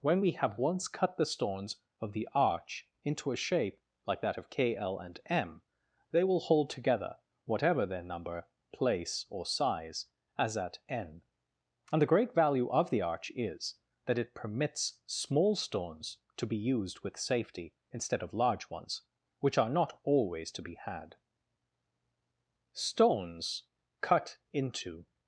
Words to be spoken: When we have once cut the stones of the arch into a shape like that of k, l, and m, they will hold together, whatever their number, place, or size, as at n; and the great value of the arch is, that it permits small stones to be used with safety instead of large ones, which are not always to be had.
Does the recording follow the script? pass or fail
fail